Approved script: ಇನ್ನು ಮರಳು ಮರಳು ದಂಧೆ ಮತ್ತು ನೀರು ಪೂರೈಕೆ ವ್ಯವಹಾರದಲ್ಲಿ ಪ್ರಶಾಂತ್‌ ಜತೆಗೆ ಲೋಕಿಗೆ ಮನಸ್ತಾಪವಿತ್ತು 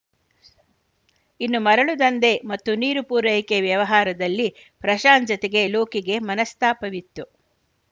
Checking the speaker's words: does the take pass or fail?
fail